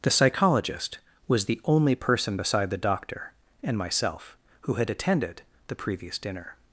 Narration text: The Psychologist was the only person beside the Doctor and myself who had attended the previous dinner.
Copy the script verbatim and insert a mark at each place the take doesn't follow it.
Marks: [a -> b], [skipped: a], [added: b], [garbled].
The Psychologist was the only person beside the Doctor and myself who had attended the previous dinner.